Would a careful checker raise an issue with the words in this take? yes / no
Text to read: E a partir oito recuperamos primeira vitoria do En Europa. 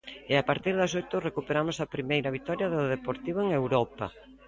yes